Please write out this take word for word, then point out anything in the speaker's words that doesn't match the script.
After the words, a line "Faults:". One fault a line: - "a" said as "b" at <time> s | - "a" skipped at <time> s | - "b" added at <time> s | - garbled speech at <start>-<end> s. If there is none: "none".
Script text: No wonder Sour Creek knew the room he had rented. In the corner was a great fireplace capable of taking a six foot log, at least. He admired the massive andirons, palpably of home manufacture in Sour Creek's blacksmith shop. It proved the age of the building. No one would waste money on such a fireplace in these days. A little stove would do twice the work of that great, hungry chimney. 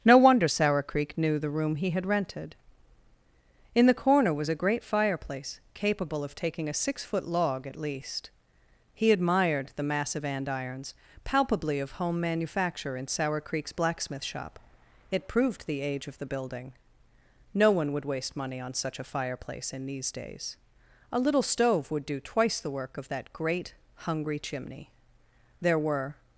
No wonder Sour Creek knew the room he had rented. In the corner was a great fireplace capable of taking a six foot log, at least. He admired the massive andirons, palpably of home manufacture in Sour Creek's blacksmith shop. It proved the age of the building. No one would waste money on such a fireplace in these days. A little stove would do twice the work of that great, hungry chimney. There were
Faults:
- "There were" added at 25.6 s